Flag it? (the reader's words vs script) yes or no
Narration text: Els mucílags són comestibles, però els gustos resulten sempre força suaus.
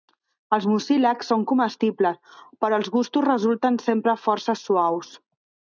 no